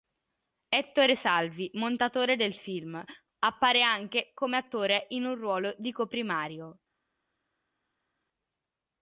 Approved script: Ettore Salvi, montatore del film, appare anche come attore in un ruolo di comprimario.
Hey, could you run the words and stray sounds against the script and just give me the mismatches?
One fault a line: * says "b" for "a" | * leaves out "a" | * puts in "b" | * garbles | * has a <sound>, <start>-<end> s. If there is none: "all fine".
all fine